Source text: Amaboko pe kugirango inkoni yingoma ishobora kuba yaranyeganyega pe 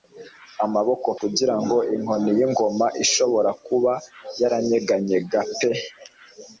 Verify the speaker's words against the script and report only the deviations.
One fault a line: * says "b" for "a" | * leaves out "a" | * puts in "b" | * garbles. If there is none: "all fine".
* leaves out "pe"